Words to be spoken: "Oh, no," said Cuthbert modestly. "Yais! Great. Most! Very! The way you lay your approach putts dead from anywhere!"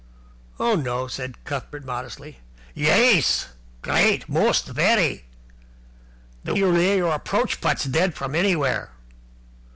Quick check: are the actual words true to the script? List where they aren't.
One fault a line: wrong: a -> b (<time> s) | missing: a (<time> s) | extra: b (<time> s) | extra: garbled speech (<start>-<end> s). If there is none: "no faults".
missing: way (6.6 s)